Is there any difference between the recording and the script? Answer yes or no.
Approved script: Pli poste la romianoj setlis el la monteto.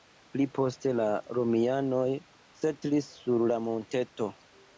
yes